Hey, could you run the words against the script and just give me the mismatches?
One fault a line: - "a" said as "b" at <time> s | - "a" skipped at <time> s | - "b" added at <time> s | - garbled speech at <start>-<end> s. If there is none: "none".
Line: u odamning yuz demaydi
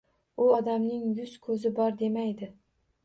- "ko‘zi bor" added at 1.5 s